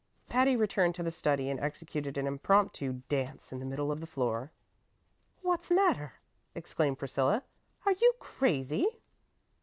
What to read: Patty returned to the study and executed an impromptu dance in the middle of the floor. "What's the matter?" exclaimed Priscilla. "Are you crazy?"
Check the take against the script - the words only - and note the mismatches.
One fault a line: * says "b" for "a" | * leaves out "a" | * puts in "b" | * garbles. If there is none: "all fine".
* leaves out "the"